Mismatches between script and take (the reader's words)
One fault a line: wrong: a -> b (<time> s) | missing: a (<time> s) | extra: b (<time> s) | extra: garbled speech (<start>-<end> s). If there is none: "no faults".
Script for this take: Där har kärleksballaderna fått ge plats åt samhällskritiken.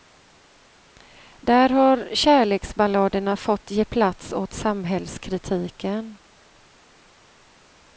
no faults